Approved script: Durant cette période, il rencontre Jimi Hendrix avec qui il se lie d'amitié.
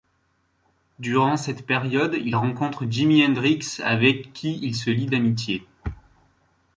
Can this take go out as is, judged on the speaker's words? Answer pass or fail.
pass